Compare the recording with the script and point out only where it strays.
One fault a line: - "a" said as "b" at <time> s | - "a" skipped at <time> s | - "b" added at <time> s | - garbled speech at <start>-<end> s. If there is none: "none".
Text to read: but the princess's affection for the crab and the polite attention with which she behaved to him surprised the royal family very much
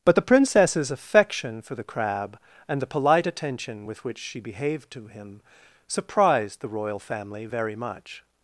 none